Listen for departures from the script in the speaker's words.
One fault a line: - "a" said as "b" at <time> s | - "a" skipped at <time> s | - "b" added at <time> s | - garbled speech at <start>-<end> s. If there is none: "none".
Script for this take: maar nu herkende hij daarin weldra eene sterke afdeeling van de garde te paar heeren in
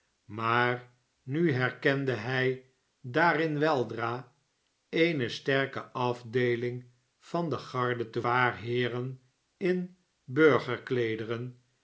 none